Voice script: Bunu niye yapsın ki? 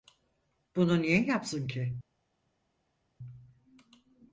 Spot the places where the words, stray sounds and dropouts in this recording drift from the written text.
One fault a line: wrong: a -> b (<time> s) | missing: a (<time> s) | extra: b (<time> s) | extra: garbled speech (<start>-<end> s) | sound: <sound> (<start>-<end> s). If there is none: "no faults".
no faults